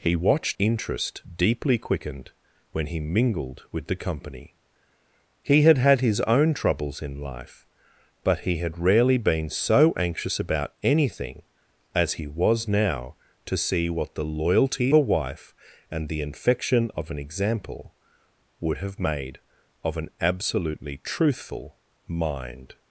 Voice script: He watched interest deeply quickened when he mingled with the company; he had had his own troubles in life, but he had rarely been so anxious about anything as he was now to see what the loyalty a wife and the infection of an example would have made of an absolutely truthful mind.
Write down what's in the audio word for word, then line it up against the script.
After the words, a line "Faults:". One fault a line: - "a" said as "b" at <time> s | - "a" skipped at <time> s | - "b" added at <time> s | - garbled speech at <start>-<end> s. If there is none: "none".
He watched interest deeply quickened when he mingled with the company; he had had his own troubles in life, but he had rarely been so anxious about anything as he was now to see what the loyalty a wife and the infection of an example would have made of an absolutely truthful mind.
Faults:
none